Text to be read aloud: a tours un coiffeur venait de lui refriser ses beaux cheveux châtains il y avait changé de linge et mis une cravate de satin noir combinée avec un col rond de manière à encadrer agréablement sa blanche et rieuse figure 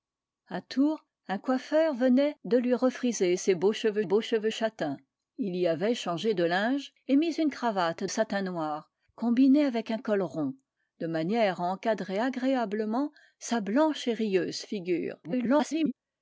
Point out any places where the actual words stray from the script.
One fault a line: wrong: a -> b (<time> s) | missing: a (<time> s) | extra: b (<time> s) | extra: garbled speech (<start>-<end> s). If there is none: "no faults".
extra: beaux cheveux (4.0 s)
missing: de (8.1 s)
extra: garbled speech (15.2-15.9 s)